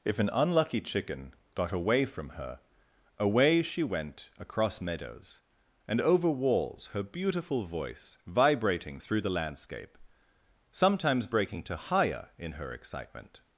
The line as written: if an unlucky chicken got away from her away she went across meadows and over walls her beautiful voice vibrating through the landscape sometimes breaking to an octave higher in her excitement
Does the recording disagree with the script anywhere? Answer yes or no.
yes